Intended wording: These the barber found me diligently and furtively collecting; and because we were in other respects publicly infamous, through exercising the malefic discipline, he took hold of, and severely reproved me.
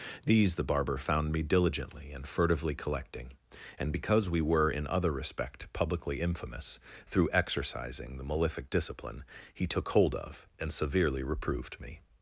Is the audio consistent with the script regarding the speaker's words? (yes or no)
no